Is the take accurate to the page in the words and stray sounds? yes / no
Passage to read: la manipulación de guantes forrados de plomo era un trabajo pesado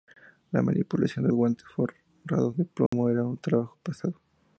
no